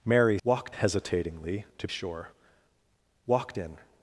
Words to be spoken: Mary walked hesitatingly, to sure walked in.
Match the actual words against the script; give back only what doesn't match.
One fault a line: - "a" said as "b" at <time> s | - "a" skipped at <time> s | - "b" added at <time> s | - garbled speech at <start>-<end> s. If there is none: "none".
none